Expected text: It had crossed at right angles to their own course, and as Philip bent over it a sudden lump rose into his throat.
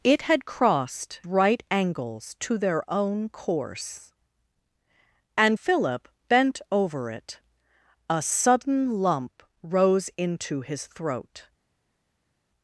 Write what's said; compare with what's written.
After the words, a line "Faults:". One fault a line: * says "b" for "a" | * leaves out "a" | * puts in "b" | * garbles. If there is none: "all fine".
It had crossed right angles to their own course, and Philip bent over it a sudden lump rose into his throat.
Faults:
* leaves out "at"
* leaves out "as"